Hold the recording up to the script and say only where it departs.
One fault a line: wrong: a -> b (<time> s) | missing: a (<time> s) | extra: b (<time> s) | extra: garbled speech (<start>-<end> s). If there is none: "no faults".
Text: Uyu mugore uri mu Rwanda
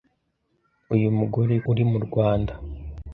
no faults